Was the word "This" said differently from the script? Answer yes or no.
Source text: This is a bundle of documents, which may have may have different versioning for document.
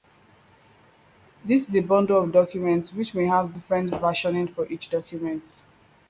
no